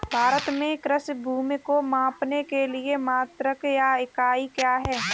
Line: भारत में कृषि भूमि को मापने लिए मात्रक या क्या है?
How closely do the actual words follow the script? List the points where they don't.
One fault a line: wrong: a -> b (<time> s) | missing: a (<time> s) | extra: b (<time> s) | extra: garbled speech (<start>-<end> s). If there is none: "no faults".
extra: के (2.4 s)
extra: इकाई (4.0 s)